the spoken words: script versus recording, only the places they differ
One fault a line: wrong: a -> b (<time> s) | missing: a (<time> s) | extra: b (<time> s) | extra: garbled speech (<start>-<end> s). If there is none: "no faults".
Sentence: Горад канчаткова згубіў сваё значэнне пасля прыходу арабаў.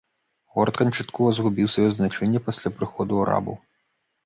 no faults